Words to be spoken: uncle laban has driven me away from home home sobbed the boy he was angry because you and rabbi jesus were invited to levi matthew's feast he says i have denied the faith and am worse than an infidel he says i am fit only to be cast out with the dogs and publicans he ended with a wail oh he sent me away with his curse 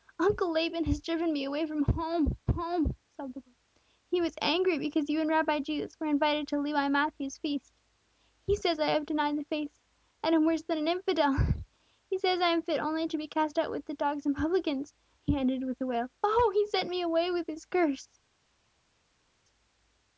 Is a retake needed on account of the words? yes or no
no